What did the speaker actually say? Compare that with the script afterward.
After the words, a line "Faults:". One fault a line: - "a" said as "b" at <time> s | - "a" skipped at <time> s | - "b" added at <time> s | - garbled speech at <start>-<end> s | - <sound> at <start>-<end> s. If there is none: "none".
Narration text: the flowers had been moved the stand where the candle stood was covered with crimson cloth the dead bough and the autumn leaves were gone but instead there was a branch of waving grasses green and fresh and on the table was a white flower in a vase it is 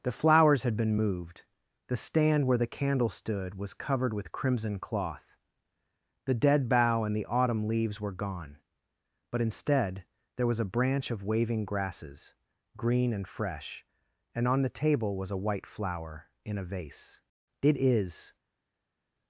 the flowers had been moved the stand where the candle stood was covered with crimson cloth the dead bough and the autumn leaves were gone but instead there was a branch of waving grasses green and fresh and on the table was a white flower in a vase it is
Faults:
none